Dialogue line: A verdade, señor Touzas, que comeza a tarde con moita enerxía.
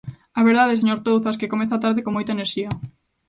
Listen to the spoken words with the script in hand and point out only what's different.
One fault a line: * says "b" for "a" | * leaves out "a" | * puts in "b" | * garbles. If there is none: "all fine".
all fine